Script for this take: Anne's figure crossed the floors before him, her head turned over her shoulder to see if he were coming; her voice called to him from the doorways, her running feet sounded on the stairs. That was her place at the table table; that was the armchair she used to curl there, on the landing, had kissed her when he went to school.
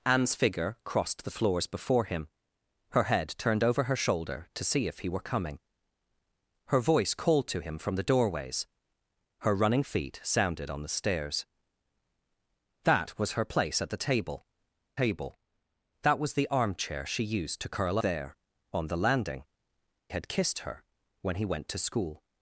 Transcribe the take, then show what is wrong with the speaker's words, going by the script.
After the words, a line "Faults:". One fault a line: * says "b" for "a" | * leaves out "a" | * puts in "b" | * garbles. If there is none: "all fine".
Anne's figure crossed the floors before him, her head turned over her shoulder to see if he were coming; her voice called to him from the doorways, her running feet sounded on the stairs. That was her place at the table table; that was the armchair she used to curl there, on the landing, had kissed her when he went to school.
Faults:
all fine